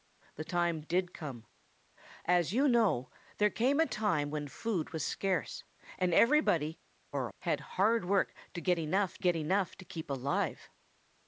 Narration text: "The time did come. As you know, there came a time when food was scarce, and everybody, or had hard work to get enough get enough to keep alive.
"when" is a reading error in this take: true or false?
false